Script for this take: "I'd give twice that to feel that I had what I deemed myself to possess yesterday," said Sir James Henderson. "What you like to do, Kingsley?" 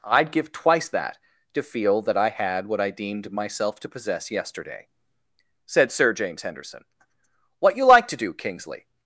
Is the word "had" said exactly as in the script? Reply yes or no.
yes